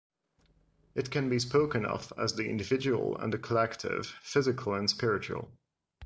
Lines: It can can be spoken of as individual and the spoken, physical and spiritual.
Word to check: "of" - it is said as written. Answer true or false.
true